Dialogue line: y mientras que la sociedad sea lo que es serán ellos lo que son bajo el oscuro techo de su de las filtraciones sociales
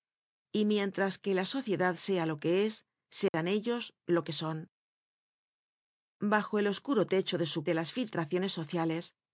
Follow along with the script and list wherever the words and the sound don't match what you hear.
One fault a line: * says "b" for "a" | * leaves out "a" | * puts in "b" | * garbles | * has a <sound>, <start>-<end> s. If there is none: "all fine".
* has a dropout, 3.3-3.3 s